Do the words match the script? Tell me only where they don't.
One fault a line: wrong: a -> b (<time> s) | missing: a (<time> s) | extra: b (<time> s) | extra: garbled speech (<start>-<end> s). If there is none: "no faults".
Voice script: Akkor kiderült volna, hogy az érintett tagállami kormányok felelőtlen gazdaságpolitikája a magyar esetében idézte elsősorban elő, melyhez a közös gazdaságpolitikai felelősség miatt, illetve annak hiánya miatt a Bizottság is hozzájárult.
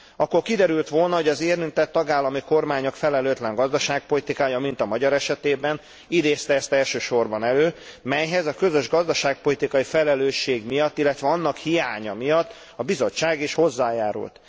extra: mint (4.6 s)
extra: ezt (6.5 s)